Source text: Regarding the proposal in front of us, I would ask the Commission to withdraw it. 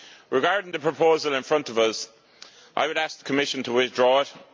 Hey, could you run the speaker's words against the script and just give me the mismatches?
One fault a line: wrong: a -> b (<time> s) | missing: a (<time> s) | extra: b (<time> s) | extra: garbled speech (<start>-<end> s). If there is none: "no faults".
no faults